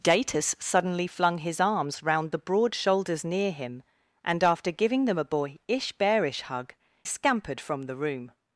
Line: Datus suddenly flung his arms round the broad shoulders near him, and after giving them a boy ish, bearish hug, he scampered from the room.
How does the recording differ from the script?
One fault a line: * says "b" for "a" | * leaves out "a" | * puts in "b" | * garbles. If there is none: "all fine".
* leaves out "he"